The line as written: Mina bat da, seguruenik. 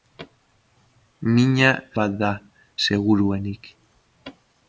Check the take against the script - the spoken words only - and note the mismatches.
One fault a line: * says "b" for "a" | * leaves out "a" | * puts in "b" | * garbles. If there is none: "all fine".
all fine